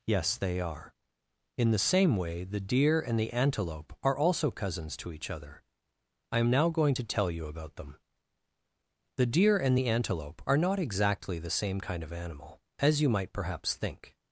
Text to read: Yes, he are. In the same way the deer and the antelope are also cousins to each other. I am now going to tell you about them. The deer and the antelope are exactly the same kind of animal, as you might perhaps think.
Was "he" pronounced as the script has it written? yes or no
no